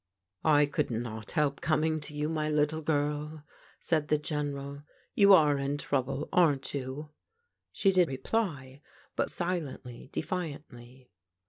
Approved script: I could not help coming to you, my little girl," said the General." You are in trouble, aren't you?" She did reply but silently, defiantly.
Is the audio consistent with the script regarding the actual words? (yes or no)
yes